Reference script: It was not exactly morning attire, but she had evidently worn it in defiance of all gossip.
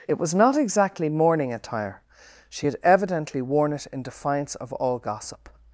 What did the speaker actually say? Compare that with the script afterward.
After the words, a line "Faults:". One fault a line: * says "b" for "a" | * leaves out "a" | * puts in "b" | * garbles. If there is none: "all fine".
It was not exactly morning attire, she had evidently worn it in defiance of all gossip.
Faults:
* leaves out "but"